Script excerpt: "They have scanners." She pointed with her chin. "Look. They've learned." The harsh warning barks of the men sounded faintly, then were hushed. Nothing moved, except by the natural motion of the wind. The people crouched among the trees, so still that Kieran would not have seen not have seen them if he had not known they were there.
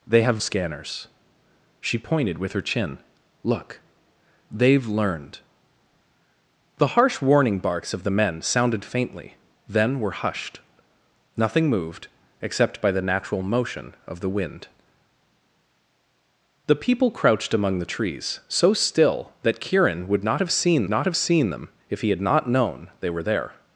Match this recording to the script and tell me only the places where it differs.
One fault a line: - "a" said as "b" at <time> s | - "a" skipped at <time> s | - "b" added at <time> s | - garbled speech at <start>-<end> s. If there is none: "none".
none